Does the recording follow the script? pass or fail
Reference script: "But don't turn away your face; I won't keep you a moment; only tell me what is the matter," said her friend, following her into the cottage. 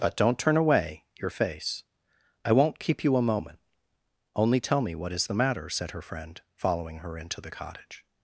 pass